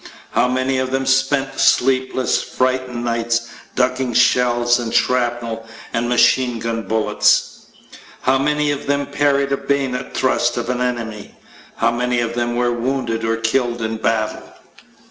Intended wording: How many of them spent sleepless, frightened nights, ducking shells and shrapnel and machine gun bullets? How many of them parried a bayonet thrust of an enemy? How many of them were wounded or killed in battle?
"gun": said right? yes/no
yes